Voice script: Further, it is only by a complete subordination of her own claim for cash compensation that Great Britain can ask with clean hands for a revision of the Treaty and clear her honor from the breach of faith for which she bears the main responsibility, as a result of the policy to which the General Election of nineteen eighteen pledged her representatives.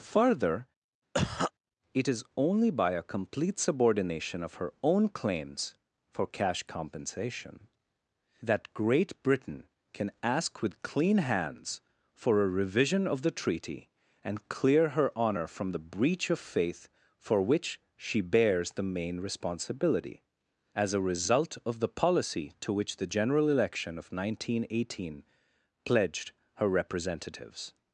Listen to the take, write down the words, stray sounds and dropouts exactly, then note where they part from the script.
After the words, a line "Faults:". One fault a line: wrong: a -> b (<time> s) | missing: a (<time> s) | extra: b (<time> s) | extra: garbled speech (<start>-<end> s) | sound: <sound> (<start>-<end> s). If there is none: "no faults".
Further, it is only by a complete subordination of her own claims for cash compensation that Great Britain can ask with clean hands for a revision of the Treaty and clear her honor from the breach of faith for which she bears the main responsibility, as a result of the policy to which the General Election of nineteen eighteen pledged her representatives.
Faults:
sound: cough (1.1-1.5 s)
wrong: claim -> claims (5.1 s)